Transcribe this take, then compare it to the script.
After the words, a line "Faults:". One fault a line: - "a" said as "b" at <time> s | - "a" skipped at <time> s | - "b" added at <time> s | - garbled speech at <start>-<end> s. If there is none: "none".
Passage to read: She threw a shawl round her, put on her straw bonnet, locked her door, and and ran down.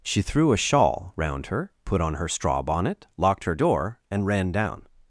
She threw a shawl round her, put on her straw bonnet, locked her door, and ran down.
Faults:
- "and" skipped at 4.2 s